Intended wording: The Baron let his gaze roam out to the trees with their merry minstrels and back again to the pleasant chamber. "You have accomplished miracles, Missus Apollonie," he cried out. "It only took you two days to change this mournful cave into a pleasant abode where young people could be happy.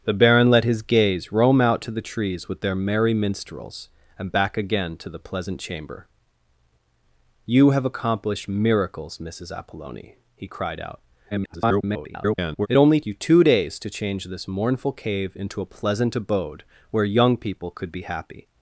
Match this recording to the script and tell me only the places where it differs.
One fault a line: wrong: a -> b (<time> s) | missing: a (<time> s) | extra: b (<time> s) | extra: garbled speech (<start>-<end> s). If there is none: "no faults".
extra: garbled speech (11.3-12.7 s)
missing: took (13.0 s)